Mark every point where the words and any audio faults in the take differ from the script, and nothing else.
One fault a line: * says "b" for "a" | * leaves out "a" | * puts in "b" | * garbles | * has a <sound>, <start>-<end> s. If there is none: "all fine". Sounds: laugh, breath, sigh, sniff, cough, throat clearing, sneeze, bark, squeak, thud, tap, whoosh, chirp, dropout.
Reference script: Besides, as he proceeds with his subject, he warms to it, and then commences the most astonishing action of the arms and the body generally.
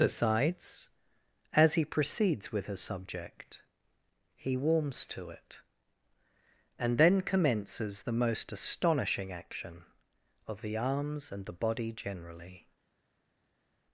* says "her" for "his"